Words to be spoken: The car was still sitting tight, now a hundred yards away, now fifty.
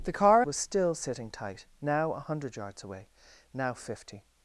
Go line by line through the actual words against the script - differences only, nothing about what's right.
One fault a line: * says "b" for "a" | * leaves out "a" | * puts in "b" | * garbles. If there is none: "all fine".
all fine